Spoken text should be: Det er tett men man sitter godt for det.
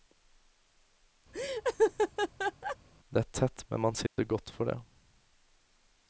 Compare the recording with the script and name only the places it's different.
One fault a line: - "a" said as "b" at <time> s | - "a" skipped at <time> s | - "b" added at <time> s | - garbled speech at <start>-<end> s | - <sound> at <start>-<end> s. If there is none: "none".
- laugh at 1.3-2.8 s
- dropout at 4.1-4.2 s